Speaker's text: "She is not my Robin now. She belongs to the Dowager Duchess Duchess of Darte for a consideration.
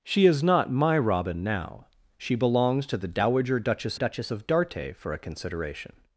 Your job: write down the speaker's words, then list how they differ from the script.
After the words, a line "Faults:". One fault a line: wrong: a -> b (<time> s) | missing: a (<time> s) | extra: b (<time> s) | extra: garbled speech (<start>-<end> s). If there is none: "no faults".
"She is not my Robin now. She belongs to the Dowager Duchess Duchess of Darte for a consideration.
Faults:
no faults